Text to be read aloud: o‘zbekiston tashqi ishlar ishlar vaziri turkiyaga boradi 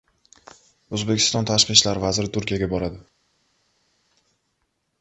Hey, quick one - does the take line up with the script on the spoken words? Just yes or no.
no